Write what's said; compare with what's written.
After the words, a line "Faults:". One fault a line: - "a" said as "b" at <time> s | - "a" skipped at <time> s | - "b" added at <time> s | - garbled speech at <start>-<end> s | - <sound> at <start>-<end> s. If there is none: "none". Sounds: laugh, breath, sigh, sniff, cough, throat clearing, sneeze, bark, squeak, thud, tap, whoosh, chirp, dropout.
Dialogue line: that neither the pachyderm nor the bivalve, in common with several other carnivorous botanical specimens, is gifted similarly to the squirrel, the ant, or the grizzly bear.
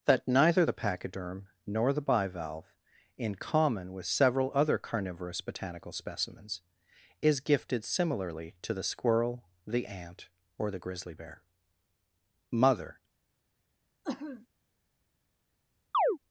that neither the pachyderm nor the bivalve, in common with several other carnivorous botanical specimens, is gifted similarly to the squirrel, the ant, or the grizzly bear. Mother
Faults:
- "Mother" added at 12.5 s
- sneeze at 14.0-14.5 s
- chirp at 15.9-16.2 s